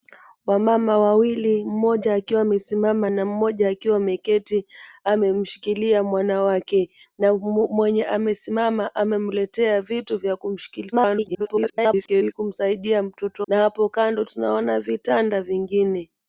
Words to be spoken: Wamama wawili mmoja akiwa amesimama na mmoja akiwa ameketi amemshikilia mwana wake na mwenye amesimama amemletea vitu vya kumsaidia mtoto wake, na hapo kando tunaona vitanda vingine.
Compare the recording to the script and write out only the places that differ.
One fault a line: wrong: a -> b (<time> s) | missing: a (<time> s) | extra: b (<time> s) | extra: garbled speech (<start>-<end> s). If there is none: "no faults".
extra: garbled speech (10.9-12.3 s)
missing: wake (13.5 s)